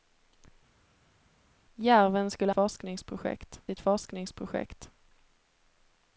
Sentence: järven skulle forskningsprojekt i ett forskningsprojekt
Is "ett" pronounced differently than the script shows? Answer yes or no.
no